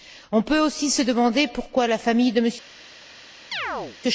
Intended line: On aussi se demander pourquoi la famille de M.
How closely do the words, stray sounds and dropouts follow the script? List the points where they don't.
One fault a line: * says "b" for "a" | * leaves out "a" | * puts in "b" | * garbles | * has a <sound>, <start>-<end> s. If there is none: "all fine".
* puts in "peut"
* has a chirp, 3.5-4.0 s